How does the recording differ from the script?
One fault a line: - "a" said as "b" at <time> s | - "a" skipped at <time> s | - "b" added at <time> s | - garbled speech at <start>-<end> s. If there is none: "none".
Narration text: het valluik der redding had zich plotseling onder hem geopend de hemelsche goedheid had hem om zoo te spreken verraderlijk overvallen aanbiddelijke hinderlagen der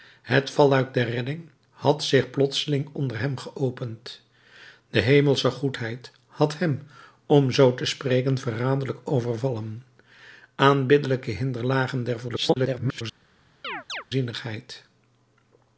- garbled speech at 12.3-13.0 s